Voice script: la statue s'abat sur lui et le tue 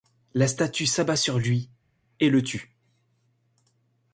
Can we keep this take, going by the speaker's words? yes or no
yes